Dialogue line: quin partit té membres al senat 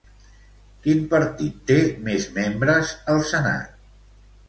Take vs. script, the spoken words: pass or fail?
fail